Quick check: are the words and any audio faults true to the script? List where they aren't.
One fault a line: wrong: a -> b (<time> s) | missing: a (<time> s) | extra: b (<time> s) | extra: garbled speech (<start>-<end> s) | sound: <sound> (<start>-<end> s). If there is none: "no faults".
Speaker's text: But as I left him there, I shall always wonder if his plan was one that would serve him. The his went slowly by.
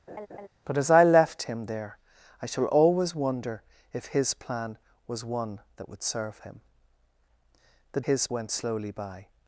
sound: laugh (0.1-0.5 s)